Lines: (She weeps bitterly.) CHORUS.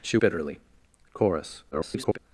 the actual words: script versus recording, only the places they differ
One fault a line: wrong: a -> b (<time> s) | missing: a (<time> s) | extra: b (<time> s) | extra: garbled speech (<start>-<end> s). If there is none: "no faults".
missing: weeps (0.2 s)
extra: garbled speech (1.7-2.2 s)